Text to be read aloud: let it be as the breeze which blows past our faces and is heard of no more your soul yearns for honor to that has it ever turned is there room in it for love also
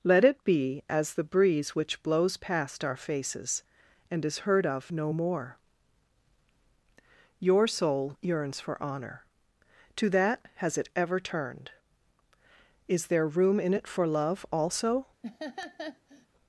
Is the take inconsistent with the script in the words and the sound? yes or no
yes